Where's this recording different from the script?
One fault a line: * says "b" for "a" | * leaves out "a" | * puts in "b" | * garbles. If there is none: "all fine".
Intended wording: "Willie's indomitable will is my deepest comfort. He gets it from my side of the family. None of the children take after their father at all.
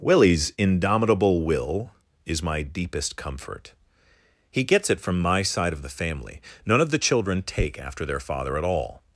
all fine